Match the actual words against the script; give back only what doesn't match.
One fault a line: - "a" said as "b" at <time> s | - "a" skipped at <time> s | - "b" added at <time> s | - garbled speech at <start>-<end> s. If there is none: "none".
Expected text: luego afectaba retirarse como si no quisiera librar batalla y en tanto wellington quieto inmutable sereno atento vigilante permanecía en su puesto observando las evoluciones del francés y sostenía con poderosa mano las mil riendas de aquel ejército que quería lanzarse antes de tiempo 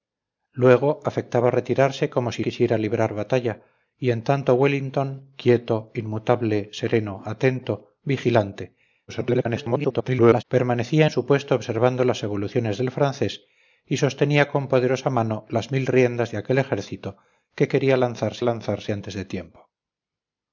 - "no" skipped at 2.4 s
- garbled speech at 9.1-10.4 s
- "lanzarse" added at 18.4 s